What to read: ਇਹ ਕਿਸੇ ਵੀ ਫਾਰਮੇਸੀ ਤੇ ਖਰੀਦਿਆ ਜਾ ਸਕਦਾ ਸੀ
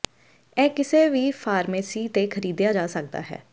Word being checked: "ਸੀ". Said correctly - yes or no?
no